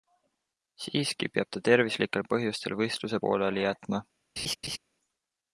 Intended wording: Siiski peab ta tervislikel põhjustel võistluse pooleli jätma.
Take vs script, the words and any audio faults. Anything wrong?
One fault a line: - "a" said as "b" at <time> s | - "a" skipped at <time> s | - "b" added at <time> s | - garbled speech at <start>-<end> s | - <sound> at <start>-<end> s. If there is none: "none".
- laugh at 4.4-4.8 s